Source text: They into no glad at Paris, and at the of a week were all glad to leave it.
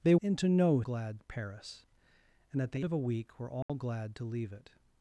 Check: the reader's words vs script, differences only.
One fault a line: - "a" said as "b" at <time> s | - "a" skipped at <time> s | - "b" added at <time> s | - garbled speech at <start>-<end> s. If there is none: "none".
none